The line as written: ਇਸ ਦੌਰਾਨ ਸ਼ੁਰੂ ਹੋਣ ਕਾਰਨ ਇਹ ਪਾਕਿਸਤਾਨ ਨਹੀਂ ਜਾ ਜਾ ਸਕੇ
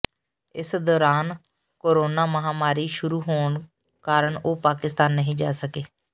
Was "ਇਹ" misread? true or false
true